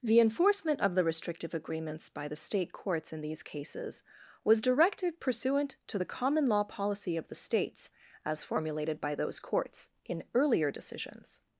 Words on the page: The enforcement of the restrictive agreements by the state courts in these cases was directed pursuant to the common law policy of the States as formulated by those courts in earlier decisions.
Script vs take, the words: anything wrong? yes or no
no